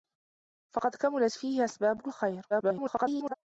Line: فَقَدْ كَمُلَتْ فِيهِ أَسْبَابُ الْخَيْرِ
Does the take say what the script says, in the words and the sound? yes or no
no